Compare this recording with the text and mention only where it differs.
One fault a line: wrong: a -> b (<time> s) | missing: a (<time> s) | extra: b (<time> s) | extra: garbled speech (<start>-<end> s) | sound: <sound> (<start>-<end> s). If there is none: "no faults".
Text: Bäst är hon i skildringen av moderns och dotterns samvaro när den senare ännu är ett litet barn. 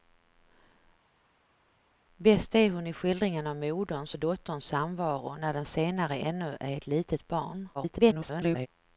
extra: garbled speech (7.7-8.7 s)